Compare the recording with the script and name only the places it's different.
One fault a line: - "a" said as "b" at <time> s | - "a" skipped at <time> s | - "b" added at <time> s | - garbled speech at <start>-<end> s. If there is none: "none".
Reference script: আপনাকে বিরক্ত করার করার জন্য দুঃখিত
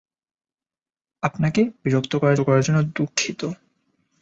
none